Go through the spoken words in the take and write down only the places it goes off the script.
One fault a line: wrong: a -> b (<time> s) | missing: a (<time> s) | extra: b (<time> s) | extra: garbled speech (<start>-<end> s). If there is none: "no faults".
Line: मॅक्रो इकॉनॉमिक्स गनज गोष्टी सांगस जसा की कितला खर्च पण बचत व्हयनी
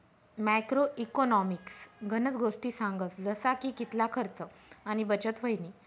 wrong: पण -> आणि (4.8 s)